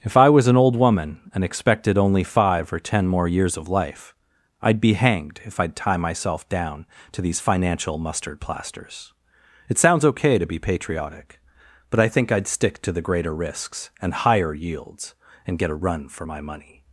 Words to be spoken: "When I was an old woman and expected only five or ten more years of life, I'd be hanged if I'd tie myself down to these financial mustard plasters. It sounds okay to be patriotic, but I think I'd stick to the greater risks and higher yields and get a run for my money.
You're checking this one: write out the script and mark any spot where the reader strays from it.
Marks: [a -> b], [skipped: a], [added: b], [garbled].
["When -> If] I was an old woman and expected only five or ten more years of life, I'd be hanged if I'd tie myself down to these financial mustard plasters. It sounds okay to be patriotic, but I think I'd stick to the greater risks and higher yields and get a run for my money.